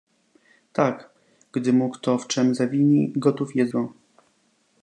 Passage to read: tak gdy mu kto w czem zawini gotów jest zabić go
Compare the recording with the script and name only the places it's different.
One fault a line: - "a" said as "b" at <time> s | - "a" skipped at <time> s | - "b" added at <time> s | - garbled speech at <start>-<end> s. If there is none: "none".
- "zabić" skipped at 3.7 s